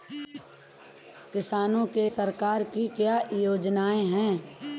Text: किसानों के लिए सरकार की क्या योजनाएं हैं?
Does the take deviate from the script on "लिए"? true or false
true